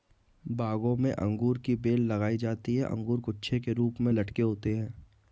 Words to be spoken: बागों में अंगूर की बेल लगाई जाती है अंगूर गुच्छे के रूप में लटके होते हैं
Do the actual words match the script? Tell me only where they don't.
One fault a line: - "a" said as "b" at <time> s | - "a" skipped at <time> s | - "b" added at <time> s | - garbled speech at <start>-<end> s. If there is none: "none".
none